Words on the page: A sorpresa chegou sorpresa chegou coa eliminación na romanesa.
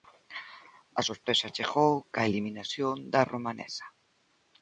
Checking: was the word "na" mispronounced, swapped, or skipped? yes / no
yes